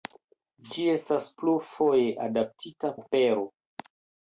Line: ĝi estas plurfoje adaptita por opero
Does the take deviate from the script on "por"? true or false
true